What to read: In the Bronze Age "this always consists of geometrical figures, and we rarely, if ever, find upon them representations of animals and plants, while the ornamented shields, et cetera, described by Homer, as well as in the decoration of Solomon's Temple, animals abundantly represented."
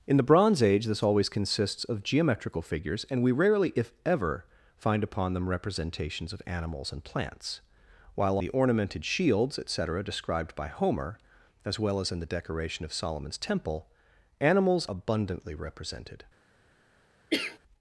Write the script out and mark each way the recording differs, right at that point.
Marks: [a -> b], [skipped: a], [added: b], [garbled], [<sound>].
In the Bronze Age "this always consists of geometrical figures, and we rarely, if ever, find upon them representations of animals and plants, while the ornamented shields, et cetera, described by Homer, as well as in the decoration of Solomon's Temple, animals abundantly represented." [cough]